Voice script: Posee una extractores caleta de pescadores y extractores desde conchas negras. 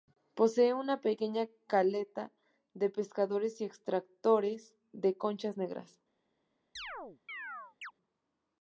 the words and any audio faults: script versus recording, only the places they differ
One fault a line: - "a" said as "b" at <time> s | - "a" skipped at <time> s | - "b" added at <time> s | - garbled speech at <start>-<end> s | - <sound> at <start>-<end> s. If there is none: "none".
- "extractores" said as "pequeña" at 1.0 s
- "desde" said as "de" at 4.9 s
- chirp at 6.8-7.9 s